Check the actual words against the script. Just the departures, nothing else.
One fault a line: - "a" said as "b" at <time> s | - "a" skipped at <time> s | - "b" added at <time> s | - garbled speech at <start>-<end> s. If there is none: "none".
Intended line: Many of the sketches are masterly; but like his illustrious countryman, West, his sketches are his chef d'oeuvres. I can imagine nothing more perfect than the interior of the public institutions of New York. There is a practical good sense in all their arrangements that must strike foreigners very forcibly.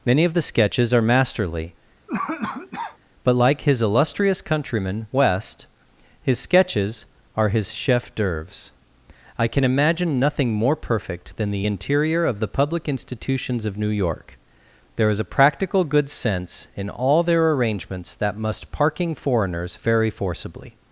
- "strike" said as "parking" at 18.7 s